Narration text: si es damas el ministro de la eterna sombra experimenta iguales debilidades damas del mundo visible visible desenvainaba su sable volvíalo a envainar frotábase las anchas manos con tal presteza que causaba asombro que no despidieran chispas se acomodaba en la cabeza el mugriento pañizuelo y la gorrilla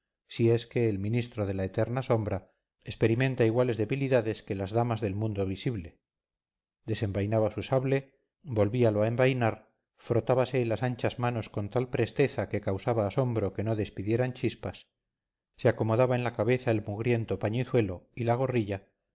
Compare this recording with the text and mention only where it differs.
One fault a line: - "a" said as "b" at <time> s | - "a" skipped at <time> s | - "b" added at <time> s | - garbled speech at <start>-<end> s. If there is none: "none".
- "damas" said as "que" at 0.7 s
- "que las" added at 4.4 s
- "visible" skipped at 6.0 s